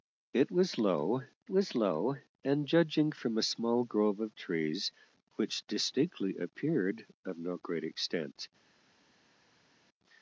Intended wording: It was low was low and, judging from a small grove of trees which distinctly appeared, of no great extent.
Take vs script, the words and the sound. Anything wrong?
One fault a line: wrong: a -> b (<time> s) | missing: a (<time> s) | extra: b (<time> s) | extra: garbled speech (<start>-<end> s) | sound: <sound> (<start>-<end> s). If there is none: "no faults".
no faults